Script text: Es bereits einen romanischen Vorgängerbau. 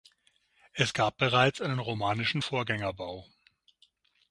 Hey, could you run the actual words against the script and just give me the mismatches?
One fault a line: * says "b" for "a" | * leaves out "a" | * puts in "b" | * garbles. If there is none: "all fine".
* puts in "gab"